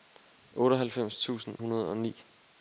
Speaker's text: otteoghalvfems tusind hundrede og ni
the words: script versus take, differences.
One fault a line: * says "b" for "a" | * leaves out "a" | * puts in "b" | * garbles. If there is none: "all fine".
all fine